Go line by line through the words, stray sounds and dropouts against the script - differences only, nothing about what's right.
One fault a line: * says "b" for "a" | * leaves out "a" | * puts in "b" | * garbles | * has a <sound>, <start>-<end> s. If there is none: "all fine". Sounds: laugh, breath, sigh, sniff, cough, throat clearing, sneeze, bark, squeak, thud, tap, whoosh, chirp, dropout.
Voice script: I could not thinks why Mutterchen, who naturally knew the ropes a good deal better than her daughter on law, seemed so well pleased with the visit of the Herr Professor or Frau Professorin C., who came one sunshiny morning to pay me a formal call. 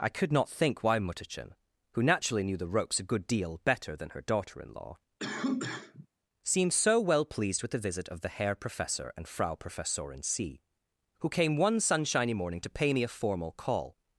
* says "think" for "thinks"
* says "in" for "on"
* has a cough, 5.2-6.1 s
* says "and" for "or"